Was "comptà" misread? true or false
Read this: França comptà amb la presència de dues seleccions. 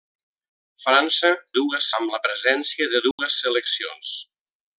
true